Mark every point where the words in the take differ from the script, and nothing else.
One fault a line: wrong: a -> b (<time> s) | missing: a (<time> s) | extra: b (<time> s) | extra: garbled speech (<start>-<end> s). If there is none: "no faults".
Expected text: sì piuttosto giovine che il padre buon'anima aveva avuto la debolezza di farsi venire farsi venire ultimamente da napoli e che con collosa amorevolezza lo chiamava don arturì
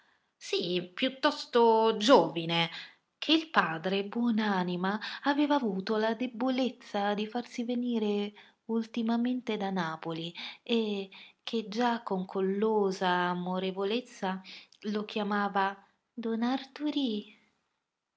missing: farsi venire (8.3 s)
extra: già (11.7 s)